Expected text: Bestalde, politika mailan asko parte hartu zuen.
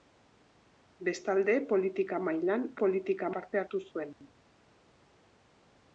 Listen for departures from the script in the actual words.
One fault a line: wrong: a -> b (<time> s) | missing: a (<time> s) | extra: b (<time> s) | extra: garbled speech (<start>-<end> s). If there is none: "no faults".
wrong: asko -> politika (2.8 s)